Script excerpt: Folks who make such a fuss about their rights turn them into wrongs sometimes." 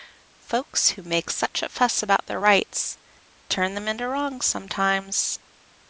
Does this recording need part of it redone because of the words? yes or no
no